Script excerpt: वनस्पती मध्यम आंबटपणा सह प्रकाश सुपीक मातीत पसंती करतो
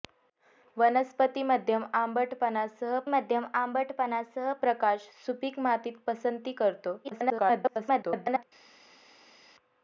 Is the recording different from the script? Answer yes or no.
yes